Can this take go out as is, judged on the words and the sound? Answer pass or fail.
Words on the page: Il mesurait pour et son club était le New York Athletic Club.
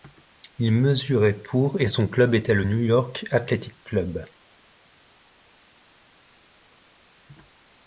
pass